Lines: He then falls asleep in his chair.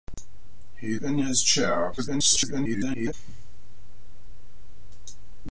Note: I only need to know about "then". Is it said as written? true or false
false